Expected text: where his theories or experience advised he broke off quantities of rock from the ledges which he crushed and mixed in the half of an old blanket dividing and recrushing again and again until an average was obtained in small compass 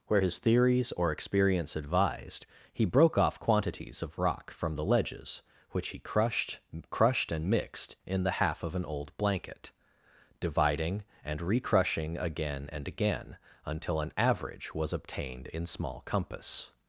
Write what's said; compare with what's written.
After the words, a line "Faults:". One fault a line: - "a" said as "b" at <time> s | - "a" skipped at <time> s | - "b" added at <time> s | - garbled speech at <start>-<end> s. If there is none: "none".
where his theories or experience advised he broke off quantities of rock from the ledges which he crushed crushed and mixed in the half of an old blanket dividing and recrushing again and again until an average was obtained in small compass
Faults:
- "crushed" added at 6.9 s